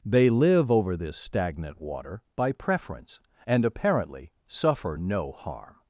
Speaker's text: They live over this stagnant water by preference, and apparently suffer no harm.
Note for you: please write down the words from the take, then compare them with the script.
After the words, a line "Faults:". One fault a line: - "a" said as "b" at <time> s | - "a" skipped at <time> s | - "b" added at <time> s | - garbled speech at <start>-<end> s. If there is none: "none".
They live over this stagnant water by preference, and apparently suffer no harm.
Faults:
none